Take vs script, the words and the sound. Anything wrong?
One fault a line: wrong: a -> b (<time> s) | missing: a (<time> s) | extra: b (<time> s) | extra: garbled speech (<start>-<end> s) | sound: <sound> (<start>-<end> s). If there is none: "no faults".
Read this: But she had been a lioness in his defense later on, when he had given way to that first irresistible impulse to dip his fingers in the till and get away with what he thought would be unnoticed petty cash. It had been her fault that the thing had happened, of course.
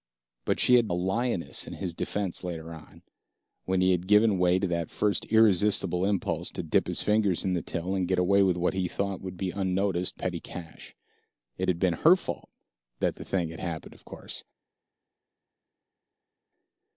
missing: been (0.9 s)